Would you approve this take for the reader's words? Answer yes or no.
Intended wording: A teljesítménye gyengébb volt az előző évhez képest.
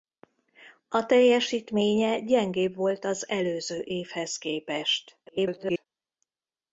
no